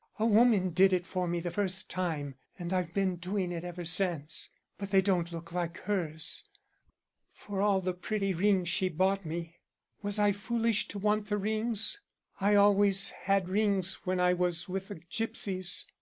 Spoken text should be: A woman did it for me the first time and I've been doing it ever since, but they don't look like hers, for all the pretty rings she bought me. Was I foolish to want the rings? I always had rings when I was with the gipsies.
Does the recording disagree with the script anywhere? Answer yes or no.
no